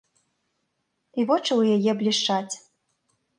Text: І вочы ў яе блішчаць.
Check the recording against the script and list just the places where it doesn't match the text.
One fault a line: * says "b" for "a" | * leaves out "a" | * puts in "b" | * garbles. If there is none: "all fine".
all fine